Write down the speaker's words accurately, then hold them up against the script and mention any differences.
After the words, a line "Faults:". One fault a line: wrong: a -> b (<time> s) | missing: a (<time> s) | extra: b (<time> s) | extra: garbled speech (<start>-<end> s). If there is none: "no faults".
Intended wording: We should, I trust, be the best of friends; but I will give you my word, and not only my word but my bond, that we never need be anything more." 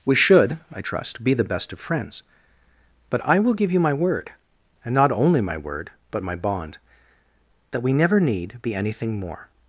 We should, I trust, be the best of friends; but I will give you my word, and not only my word but my bond, that we never need be anything more."
Faults:
no faults